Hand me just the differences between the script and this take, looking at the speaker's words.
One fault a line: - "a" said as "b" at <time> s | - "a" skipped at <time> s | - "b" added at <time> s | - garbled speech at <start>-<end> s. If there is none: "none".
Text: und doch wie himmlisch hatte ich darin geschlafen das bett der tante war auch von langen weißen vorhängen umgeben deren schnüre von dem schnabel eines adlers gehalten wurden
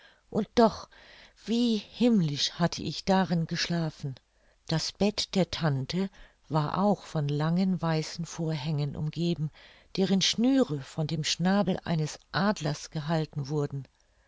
none